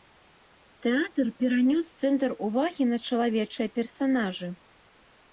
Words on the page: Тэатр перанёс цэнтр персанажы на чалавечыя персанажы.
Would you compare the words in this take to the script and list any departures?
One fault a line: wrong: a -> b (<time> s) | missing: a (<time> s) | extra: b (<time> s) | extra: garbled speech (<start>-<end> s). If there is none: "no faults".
wrong: персанажы -> увагі (2.5 s)